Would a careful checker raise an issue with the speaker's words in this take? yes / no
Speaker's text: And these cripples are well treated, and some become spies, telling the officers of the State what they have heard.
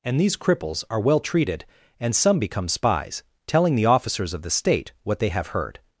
no